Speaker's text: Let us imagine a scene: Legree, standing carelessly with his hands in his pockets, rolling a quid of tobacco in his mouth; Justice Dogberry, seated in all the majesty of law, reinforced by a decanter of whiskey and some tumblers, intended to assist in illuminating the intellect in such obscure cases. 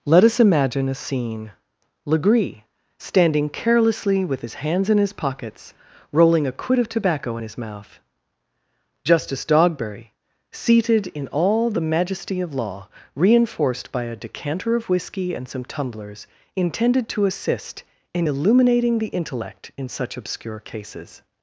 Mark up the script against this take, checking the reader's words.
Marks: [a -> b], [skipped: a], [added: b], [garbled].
Let us imagine a scene: Legree, standing carelessly with his hands in his pockets, rolling a quid of tobacco in his mouth; Justice Dogberry, seated in all the majesty of law, reinforced by a decanter of whiskey and some tumblers, intended to assist in illuminating the intellect in such obscure cases.